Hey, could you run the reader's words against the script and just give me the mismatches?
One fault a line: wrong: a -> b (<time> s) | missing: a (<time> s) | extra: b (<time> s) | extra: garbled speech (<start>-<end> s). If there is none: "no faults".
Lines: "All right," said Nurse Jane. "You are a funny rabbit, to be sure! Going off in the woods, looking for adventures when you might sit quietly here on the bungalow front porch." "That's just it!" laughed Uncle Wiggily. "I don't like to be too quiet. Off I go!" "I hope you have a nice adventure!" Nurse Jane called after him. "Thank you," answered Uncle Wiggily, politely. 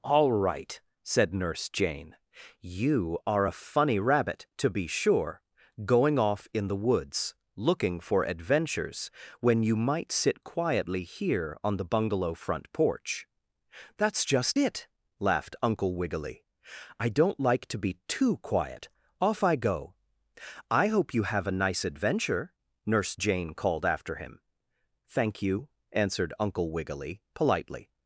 no faults